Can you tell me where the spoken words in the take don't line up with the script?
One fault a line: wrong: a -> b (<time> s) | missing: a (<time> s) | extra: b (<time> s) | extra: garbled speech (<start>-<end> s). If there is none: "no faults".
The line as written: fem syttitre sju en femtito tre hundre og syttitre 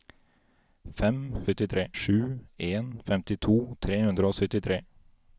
no faults